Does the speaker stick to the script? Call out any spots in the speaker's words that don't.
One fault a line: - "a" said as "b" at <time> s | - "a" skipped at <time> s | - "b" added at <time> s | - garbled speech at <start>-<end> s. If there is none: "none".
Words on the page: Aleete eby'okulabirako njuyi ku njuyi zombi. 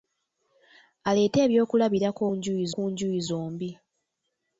none